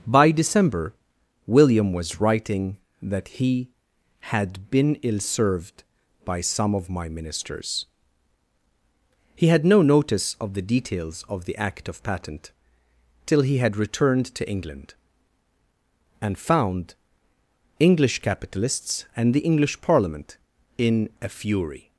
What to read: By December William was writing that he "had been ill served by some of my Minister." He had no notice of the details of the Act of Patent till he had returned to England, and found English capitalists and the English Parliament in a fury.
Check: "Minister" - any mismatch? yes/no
yes